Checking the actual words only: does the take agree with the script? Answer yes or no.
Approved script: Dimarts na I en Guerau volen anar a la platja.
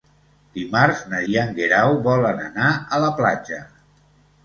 yes